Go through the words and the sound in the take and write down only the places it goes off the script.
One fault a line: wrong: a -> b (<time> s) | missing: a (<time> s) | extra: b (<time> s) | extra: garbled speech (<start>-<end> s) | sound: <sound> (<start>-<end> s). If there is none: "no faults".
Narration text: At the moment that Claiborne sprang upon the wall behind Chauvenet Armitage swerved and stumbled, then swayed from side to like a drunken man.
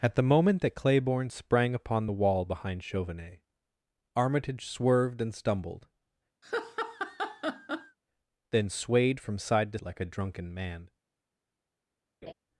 sound: laugh (6.4-8.0 s)
sound: laugh (12.2-12.3 s)